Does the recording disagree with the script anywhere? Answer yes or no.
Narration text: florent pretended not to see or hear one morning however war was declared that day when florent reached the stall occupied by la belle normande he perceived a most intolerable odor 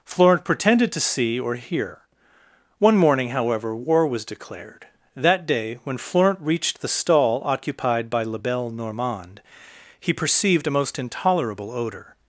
yes